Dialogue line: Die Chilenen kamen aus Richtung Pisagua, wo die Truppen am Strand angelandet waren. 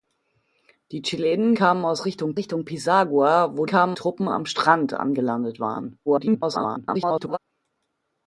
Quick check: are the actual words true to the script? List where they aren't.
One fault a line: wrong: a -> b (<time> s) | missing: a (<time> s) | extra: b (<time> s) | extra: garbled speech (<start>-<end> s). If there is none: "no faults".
extra: Richtung (2.4 s)
wrong: die -> kamen (3.7 s)
extra: garbled speech (6.1-7.4 s)